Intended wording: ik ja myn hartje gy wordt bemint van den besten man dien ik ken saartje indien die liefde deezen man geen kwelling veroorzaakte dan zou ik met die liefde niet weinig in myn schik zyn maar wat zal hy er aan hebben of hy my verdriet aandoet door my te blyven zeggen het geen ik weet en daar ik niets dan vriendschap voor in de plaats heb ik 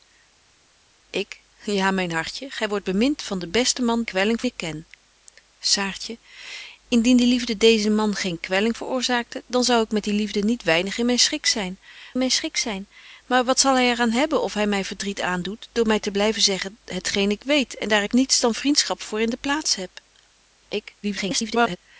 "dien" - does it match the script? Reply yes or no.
no